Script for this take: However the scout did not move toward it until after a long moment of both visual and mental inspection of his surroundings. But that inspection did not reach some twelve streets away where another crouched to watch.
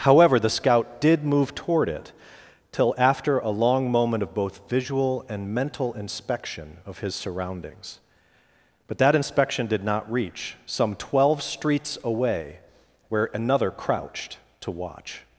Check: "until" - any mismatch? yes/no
yes